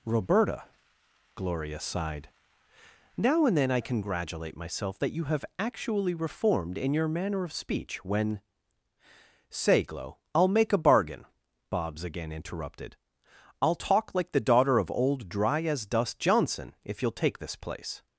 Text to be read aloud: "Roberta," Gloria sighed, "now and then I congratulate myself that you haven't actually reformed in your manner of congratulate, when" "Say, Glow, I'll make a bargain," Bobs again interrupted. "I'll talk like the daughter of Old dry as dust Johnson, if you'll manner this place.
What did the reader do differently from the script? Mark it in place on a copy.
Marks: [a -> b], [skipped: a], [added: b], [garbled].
"Roberta," Gloria sighed, "now and then I congratulate myself that you [haven't -> have] actually reformed in your manner of [congratulate, -> speech] when" "Say, Glow, I'll make a bargain," Bobs again interrupted. "I'll talk like the daughter of Old dry as dust Johnson, if you'll [manner -> take] this place.